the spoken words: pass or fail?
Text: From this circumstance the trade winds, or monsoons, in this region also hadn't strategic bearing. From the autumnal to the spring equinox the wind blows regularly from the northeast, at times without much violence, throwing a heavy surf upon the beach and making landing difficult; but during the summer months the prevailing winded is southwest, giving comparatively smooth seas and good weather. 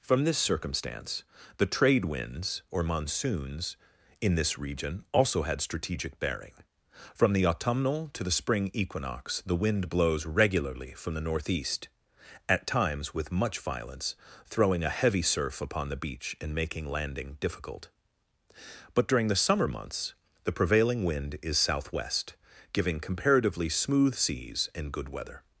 fail